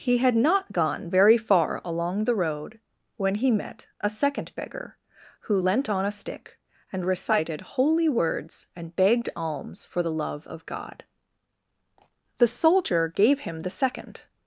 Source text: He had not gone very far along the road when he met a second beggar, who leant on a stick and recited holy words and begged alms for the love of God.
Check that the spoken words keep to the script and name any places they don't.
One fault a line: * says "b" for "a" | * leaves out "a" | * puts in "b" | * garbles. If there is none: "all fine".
* puts in "The soldier gave him the second"